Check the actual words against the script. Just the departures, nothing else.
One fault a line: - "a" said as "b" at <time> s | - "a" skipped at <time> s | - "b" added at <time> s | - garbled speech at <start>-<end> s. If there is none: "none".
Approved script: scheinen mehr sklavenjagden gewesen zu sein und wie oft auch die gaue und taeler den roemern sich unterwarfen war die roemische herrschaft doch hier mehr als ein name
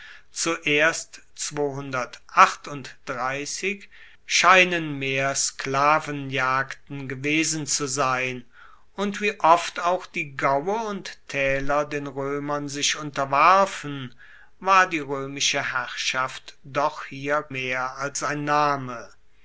none